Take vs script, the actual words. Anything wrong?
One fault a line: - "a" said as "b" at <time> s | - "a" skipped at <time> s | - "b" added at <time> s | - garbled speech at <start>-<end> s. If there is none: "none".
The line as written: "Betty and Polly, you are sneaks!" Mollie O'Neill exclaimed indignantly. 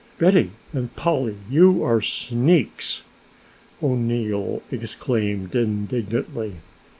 - "Mollie" skipped at 3.0 s